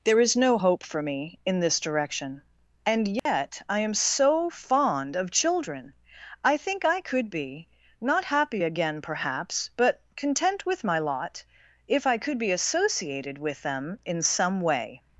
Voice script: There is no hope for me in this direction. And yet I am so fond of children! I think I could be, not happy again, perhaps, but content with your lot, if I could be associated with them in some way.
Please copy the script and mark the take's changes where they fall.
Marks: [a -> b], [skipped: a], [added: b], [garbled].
There is no hope for me in this direction. And yet I am so fond of children! I think I could be, not happy again, perhaps, but content with [your -> my] lot, if I could be associated with them in some way.